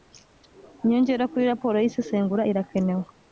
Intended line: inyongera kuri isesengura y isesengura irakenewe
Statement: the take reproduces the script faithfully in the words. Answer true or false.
false